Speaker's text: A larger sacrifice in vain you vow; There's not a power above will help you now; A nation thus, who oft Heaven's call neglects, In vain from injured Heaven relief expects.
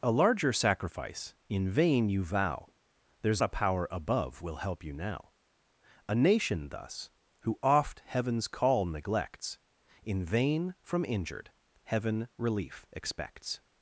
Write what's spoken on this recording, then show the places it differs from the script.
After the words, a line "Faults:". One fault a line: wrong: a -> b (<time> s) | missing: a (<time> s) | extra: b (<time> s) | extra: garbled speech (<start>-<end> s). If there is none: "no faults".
A larger sacrifice in vain you vow; There's a power above will help you now; A nation thus, who oft Heaven's call neglects, In vain from injured Heaven relief expects.
Faults:
missing: not (3.4 s)